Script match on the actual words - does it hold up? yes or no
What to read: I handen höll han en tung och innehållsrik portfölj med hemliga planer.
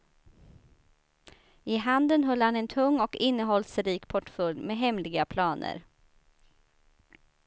yes